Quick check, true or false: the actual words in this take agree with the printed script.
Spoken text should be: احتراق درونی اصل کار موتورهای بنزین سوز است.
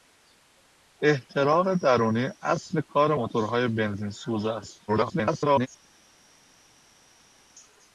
false